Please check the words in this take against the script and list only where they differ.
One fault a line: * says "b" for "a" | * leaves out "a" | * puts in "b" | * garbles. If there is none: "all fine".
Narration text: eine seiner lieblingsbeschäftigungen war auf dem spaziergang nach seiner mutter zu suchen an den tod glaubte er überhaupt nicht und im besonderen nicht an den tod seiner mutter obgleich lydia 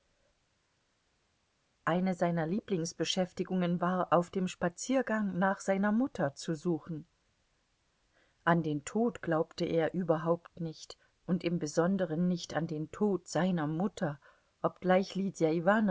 all fine